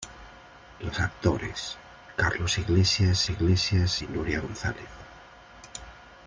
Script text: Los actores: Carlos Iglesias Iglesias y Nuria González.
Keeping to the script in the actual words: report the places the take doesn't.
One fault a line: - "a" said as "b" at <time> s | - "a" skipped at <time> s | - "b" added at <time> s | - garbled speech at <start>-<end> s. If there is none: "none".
none